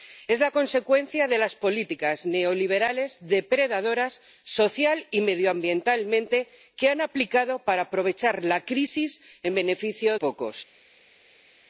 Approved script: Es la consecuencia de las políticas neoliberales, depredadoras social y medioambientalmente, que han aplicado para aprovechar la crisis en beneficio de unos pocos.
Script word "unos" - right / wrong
wrong